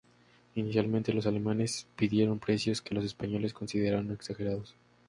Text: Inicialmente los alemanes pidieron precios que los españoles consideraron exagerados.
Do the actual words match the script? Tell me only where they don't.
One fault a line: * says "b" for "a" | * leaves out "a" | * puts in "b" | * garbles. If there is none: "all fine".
all fine